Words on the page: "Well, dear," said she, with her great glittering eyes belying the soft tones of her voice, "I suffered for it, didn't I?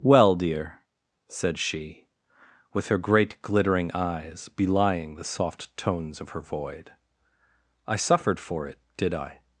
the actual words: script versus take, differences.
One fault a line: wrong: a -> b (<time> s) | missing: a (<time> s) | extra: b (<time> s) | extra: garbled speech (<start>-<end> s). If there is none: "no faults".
wrong: voice -> void (6.4 s)
wrong: didn't -> did (9.0 s)